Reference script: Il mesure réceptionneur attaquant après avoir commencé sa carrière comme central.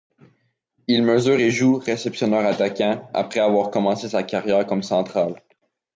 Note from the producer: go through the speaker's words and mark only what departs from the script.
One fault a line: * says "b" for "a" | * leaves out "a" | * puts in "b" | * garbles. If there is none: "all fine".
* puts in "et joue"